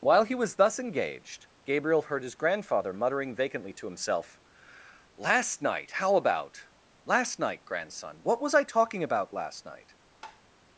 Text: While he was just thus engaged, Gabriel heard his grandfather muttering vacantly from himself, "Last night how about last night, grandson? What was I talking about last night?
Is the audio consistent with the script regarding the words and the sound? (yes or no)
no